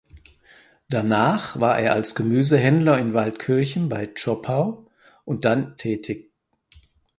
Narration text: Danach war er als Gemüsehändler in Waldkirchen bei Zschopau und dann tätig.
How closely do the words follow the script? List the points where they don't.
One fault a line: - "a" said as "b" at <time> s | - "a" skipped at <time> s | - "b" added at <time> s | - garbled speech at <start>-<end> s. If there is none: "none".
none